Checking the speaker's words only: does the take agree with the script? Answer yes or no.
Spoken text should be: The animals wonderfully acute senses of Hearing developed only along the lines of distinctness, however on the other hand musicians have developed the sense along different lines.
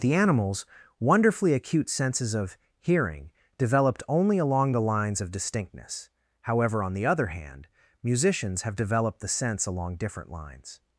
yes